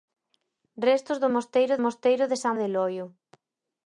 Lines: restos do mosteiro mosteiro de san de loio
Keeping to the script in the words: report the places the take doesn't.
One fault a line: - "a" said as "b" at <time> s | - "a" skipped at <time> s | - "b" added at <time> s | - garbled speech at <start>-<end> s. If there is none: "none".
none